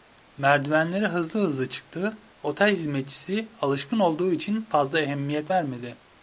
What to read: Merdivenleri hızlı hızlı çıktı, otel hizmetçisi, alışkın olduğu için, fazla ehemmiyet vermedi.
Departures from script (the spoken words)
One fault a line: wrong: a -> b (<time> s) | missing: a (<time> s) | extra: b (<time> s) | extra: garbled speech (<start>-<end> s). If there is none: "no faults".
no faults